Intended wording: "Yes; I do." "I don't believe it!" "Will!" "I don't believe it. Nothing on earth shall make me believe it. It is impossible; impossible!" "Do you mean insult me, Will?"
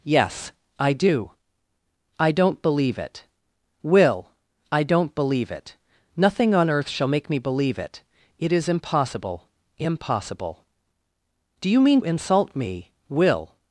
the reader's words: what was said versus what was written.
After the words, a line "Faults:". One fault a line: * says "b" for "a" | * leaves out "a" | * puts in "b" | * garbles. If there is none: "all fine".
"Yes; I do." "I don't believe it!" "Will!" "I don't believe it. Nothing on earth shall make me believe it. It is impossible; impossible!" "Do you mean insult me, Will?"
Faults:
all fine